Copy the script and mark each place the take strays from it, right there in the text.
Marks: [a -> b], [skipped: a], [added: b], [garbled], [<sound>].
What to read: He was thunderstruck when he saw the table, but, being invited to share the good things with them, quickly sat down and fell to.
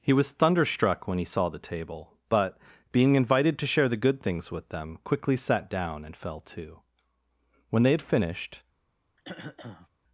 He was thunderstruck when he saw the table, but, being invited to share the good things with them, quickly sat down and fell to. [added: When they had finished] [throat clearing]